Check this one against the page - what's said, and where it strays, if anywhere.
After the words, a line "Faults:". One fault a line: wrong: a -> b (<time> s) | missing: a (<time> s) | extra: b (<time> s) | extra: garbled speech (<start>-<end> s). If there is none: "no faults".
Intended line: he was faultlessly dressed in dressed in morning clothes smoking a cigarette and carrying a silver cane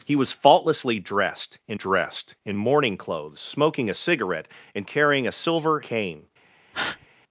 he was faultlessly dressed in dressed in morning clothes smoking a cigarette and carrying a silver cane
Faults:
no faults